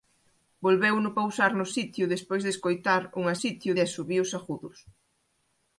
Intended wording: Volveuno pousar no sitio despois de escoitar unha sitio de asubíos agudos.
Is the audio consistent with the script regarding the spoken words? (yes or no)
yes